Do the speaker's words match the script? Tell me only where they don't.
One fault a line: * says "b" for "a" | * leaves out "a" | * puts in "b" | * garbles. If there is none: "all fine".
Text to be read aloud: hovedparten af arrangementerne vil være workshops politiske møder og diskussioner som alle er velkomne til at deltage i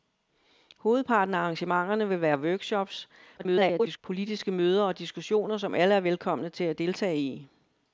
* garbles